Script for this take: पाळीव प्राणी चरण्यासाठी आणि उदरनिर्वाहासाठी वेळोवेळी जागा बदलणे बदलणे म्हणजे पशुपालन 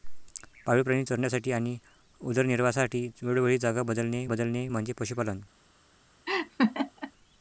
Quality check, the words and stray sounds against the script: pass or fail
fail